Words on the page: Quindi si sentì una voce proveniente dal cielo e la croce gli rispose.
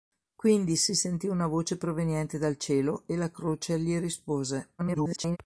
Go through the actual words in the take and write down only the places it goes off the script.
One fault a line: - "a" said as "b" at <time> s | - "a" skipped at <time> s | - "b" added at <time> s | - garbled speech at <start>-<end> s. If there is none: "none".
- garbled speech at 4.8-5.4 s